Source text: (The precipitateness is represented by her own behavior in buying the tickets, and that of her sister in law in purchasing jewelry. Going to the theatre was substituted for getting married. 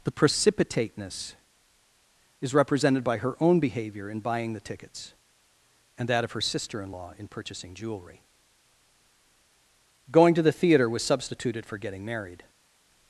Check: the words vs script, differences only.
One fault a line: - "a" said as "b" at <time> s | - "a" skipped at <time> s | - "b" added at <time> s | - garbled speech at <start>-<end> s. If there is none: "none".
none